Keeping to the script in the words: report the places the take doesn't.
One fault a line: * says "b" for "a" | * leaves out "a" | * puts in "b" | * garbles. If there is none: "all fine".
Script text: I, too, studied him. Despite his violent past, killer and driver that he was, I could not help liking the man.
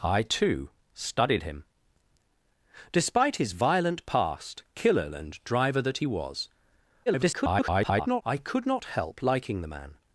* garbles